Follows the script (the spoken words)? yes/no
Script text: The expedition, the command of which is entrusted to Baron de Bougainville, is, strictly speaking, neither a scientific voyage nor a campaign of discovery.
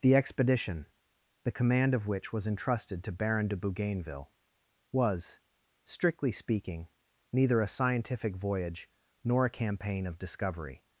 no